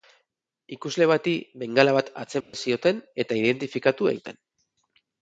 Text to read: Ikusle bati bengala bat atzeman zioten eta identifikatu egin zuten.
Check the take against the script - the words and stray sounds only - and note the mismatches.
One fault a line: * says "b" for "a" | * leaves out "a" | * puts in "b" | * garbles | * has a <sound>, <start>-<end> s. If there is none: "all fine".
* has a dropout, 2.4-2.5 s
* leaves out "egin"